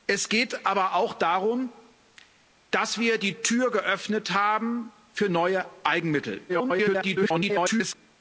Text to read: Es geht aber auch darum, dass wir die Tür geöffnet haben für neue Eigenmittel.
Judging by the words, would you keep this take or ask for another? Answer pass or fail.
fail